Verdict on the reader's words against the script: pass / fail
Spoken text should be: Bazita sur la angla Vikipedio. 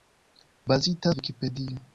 fail